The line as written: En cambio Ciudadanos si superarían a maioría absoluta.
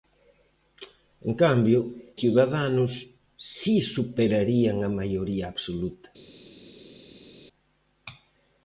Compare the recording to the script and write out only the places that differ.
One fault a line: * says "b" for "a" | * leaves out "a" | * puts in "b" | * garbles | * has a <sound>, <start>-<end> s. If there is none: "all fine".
all fine